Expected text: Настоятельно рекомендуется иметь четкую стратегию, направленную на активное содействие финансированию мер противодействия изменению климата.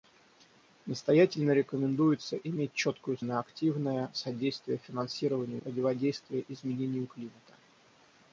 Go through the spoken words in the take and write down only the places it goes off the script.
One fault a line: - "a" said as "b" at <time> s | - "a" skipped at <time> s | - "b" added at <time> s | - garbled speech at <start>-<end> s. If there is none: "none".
- "стратегию направленную" skipped at 3.2 s
- "мер" skipped at 5.6 s